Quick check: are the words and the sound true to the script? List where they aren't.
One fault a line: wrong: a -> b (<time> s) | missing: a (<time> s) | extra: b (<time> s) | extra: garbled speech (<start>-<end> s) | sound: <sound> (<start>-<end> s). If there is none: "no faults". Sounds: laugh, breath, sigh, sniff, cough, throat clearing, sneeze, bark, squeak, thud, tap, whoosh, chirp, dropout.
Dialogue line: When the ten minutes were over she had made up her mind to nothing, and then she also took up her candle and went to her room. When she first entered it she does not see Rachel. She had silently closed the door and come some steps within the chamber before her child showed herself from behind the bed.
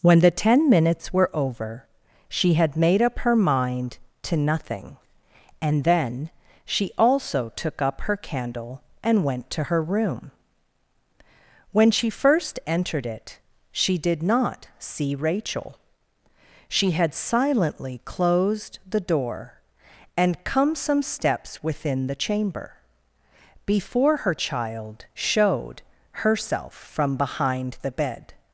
wrong: does -> did (14.0 s)